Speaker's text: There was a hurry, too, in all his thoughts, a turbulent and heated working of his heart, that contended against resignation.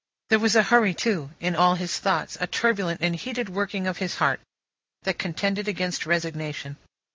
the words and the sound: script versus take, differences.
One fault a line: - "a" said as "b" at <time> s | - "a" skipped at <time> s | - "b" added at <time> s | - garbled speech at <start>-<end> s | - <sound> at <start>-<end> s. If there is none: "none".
none